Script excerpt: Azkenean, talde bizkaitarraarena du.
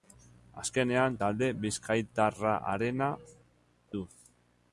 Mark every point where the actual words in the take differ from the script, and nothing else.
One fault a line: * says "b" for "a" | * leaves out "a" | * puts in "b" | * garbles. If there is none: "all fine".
all fine